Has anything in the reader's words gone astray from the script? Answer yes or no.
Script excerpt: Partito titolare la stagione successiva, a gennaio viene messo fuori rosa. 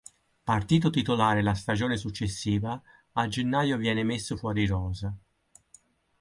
no